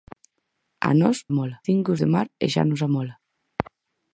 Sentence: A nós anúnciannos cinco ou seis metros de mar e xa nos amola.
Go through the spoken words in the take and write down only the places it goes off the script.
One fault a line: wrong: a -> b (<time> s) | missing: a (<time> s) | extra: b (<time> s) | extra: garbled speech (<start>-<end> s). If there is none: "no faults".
wrong: anúnciannos -> amola (1.3 s)
missing: seis metros (2.0 s)